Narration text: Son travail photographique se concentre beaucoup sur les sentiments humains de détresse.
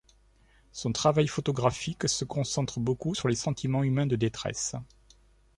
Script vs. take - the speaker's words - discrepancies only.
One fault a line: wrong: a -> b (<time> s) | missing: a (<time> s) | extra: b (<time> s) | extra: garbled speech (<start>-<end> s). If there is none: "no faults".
no faults